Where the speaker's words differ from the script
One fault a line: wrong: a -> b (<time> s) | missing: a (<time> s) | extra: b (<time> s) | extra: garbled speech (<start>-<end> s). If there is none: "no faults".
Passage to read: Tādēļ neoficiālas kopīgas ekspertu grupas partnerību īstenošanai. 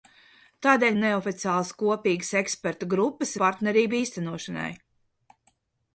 no faults